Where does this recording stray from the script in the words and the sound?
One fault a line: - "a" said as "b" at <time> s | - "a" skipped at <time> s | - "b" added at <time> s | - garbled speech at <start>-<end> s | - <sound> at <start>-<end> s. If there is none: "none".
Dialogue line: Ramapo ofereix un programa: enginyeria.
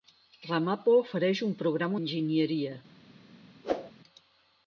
- whoosh at 3.6-3.9 s